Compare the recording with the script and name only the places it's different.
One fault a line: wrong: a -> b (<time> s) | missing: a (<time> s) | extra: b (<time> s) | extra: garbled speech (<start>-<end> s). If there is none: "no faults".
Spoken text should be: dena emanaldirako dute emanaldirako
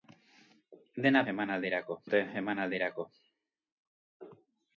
no faults